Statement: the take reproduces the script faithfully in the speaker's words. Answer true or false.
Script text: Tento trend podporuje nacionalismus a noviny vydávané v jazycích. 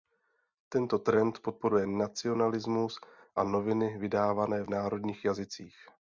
false